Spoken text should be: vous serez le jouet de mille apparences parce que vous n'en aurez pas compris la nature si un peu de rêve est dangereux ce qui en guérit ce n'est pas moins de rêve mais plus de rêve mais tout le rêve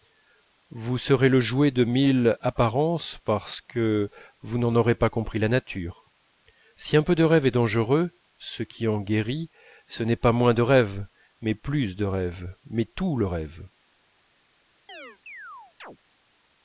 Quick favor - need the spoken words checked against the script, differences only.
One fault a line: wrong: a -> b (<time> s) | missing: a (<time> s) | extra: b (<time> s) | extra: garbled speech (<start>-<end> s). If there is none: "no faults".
no faults